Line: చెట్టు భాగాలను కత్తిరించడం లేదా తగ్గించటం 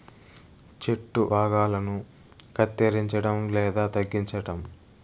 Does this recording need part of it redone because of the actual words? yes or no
no